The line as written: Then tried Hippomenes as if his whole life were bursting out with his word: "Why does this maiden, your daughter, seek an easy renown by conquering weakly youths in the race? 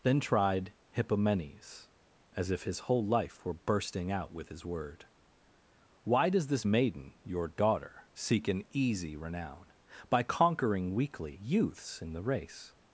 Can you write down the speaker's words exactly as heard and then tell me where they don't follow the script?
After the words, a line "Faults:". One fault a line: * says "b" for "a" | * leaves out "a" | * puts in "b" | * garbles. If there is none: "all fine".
Then tried Hippomenes as if his whole life were bursting out with his word: "Why does this maiden, your daughter, seek an easy renown by conquering weakly youths in the race?
Faults:
all fine